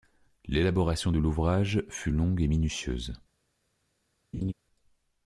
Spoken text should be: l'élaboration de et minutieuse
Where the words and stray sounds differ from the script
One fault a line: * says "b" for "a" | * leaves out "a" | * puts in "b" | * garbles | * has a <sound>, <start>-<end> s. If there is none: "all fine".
* puts in "l'ouvrage fut longue"
* has a laugh, 4.3-4.5 s